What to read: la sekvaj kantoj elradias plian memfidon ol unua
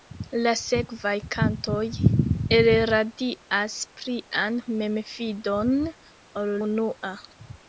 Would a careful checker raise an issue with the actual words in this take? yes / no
no